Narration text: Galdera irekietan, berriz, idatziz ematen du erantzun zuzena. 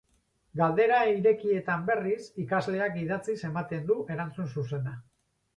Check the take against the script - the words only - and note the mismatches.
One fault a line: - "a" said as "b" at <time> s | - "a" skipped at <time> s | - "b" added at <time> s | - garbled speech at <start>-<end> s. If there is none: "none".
- "ikasleak" added at 2.5 s